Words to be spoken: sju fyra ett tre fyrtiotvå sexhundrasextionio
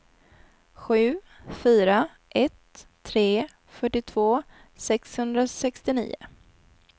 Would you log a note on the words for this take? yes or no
no